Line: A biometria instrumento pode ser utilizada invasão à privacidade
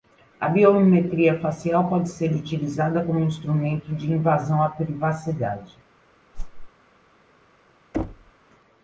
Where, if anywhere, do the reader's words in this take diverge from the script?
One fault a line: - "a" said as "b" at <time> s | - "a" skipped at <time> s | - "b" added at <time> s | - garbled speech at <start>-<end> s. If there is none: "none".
- "instrumento" said as "facial" at 1.4 s
- "como instrumento de" added at 3.0 s